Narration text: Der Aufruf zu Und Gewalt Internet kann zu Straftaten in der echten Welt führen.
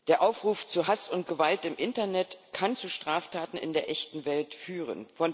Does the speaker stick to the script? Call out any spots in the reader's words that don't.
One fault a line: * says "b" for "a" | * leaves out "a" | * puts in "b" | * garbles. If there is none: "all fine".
* puts in "Hass"
* puts in "im"